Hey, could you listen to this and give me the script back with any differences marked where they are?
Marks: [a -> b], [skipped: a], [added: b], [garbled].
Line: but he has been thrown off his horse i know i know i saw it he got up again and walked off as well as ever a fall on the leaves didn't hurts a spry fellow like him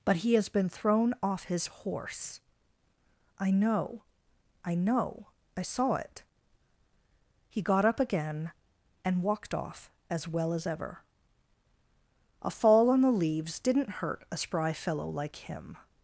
but he has been thrown off his horse i know i know i saw it he got up again and walked off as well as ever a fall on the leaves didn't [hurts -> hurt] a spry fellow like him